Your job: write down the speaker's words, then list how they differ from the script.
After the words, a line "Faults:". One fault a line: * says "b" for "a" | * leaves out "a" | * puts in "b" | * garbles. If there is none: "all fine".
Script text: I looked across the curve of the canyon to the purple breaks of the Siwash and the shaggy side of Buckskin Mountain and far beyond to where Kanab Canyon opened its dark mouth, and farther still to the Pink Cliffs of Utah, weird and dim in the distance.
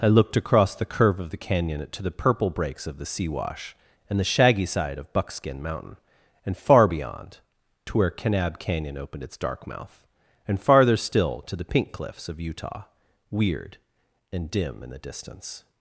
I looked across the curve of the canyon to the purple breaks of the Siwash and the shaggy side of Buckskin Mountain and far beyond to where Kanab Canyon opened its dark mouth, and farther still to the Pink Cliffs of Utah, weird and dim in the distance.
Faults:
all fine